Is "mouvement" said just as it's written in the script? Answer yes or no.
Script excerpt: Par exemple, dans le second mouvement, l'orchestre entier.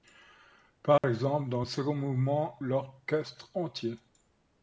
yes